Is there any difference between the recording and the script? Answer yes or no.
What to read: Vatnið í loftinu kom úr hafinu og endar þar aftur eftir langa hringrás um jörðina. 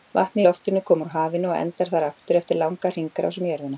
no